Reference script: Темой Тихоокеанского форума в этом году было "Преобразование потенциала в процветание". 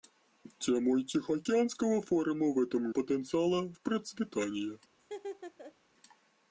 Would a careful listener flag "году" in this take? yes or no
yes